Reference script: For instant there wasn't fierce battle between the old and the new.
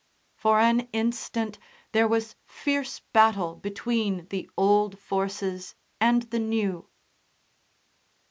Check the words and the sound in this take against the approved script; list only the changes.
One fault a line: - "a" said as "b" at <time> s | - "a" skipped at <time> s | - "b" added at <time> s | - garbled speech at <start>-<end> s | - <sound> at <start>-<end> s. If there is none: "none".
- "an" added at 0.6 s
- "wasn't" said as "was" at 2.1 s
- "forces" added at 5.0 s